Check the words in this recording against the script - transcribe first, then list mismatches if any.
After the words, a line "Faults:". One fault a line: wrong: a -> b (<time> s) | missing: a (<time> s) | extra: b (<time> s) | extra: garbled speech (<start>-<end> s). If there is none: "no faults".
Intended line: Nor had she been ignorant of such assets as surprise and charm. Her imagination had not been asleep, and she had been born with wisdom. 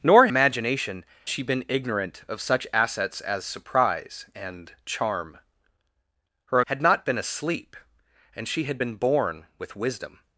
Nor imagination she been ignorant of such assets as surprise and charm. Her had not been asleep, and she had been born with wisdom.
Faults:
wrong: had -> imagination (0.3 s)
missing: imagination (6.6 s)